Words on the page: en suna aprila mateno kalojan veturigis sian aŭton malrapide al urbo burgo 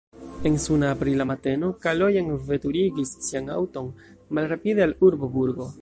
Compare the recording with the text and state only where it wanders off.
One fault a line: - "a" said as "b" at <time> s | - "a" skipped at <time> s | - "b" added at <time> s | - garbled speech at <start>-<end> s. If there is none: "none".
none